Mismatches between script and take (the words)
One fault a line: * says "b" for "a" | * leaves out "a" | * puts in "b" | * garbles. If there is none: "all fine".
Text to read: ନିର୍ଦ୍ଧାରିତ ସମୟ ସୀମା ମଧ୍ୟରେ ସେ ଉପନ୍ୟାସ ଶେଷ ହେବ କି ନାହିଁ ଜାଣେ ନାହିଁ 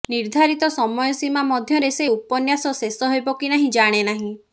all fine